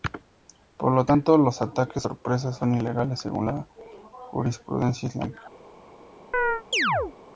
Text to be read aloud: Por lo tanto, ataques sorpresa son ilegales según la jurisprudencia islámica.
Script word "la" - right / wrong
right